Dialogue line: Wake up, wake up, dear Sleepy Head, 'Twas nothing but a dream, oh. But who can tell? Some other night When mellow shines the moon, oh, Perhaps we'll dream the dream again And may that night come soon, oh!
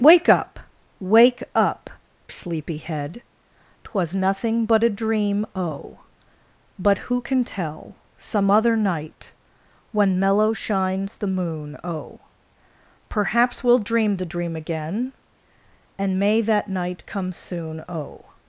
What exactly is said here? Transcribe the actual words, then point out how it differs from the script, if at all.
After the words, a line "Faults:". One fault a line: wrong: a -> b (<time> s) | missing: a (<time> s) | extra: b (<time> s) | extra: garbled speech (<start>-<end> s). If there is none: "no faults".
Wake up, wake up, Sleepy Head, 'Twas nothing but a dream, oh. But who can tell? Some other night When mellow shines the moon, oh, Perhaps we'll dream the dream again And may that night come soon, oh!
Faults:
missing: dear (1.9 s)